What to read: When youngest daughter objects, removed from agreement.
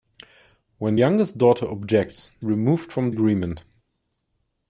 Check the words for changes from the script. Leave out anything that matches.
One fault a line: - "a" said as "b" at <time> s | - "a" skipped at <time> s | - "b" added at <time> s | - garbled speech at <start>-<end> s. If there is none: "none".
none